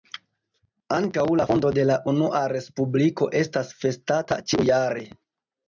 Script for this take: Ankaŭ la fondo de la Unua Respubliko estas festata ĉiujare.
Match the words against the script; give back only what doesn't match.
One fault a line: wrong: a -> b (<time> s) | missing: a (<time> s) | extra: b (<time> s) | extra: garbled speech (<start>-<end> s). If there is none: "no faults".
no faults